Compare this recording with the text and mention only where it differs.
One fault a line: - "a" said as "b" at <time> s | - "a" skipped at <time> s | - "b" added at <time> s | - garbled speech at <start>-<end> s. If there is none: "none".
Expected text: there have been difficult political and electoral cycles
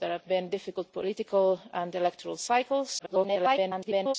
- garbled speech at 3.0-4.1 s